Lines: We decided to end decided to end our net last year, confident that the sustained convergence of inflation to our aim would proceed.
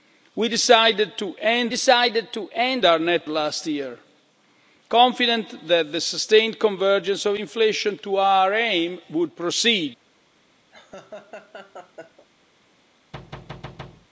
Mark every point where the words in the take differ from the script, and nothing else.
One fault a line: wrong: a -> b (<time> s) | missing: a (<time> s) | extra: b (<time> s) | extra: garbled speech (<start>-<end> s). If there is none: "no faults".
no faults